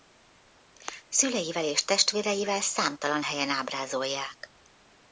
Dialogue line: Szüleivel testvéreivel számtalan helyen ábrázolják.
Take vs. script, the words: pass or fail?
fail